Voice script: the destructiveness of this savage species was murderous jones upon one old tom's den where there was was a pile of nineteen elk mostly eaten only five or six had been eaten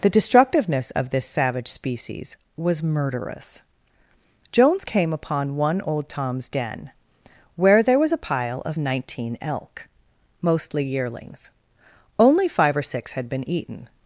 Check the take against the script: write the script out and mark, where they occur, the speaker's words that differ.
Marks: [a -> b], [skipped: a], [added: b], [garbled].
the destructiveness of this savage species was murderous jones [added: came] upon one old tom's den where there was [skipped: was] a pile of nineteen elk mostly [eaten -> yearlings] only five or six had been eaten